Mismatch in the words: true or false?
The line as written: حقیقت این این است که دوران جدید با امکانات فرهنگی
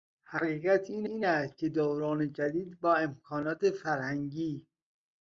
false